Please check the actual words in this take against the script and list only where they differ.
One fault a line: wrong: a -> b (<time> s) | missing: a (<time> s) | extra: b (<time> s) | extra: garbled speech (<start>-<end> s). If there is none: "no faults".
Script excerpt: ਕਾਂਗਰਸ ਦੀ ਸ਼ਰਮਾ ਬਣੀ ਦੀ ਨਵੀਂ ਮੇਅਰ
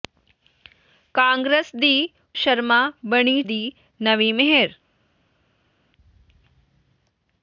no faults